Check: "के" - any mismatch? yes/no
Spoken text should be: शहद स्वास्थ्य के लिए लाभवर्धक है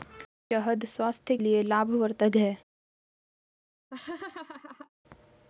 yes